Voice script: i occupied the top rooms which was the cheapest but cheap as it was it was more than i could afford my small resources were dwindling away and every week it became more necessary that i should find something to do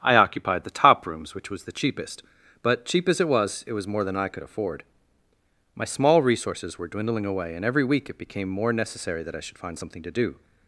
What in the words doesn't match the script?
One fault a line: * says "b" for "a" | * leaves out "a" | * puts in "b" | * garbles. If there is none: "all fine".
all fine